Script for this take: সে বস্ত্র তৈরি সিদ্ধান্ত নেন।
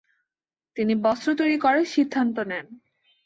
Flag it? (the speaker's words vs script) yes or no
yes